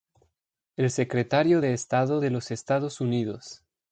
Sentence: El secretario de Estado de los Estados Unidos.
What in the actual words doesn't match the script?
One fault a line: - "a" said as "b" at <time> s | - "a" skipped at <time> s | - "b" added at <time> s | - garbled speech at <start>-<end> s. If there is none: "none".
none